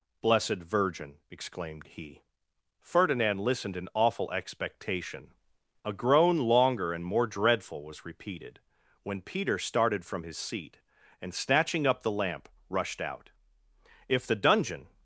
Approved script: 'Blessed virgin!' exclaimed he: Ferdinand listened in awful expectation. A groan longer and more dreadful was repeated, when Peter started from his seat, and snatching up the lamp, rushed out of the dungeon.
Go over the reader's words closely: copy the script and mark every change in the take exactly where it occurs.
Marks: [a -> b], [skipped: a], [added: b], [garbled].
'Blessed virgin!' exclaimed he: Ferdinand listened in awful expectation. A groan longer and more dreadful was repeated, when Peter started from his seat, and snatching up the lamp, rushed out [of -> if] the dungeon.